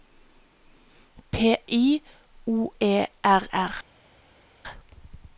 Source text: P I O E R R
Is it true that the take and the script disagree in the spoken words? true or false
false